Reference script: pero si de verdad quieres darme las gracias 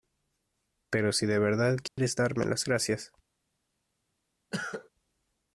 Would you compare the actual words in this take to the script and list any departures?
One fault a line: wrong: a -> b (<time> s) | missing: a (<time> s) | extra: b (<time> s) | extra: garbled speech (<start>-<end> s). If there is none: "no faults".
no faults